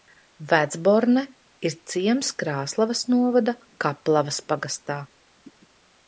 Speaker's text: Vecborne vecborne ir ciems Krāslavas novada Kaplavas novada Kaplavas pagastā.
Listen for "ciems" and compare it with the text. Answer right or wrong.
right